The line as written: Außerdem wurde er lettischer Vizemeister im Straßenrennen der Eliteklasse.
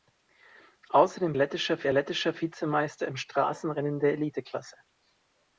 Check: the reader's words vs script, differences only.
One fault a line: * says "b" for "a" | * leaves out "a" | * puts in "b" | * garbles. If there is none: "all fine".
* says "lettischer" for "wurde"